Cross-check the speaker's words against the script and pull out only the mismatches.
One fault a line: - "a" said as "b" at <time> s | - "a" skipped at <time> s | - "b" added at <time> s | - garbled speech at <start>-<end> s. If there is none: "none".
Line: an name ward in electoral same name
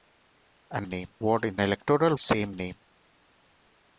none